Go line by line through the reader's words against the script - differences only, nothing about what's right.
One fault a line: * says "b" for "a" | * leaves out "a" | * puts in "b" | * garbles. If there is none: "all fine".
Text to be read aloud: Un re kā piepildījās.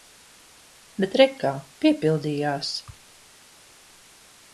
* says "Bet" for "Un"